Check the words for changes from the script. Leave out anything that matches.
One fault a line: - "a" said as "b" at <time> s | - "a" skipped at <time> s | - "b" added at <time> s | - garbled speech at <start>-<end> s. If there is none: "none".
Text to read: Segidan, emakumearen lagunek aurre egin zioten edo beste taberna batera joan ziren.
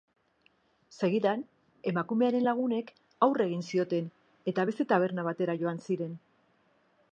- "edo" said as "eta" at 4.5 s